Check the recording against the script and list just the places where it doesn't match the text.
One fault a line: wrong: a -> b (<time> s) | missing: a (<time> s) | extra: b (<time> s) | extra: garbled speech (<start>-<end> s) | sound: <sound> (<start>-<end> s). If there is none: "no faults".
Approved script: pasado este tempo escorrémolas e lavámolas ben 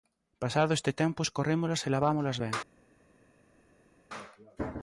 no faults